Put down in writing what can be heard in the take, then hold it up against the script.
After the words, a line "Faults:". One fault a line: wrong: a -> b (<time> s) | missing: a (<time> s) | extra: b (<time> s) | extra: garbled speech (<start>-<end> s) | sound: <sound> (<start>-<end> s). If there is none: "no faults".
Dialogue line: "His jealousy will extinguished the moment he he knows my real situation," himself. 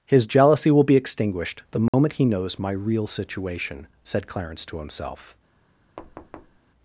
"His jealousy will be extinguished the moment he knows my real situation," said Clarence to himself.
Faults:
extra: be (0.8 s)
sound: dropout (1.9-1.9 s)
missing: he (2.2 s)
extra: said Clarence to (4.0 s)
sound: thud (6.0-6.6 s)